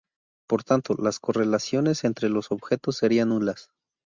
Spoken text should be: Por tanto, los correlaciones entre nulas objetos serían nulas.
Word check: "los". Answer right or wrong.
wrong